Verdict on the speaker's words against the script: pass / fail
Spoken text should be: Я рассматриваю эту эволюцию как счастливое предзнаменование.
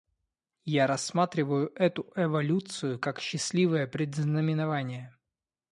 pass